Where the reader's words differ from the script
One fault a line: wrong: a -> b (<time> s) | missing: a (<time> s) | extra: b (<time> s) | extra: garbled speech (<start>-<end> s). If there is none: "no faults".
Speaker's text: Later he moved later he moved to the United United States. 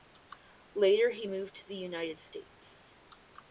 missing: later he moved (1.6 s)
missing: United (2.2 s)